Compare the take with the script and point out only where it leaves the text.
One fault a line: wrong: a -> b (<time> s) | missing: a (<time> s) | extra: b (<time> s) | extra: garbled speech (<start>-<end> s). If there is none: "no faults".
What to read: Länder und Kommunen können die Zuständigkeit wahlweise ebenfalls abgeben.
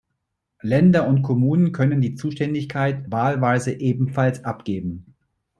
no faults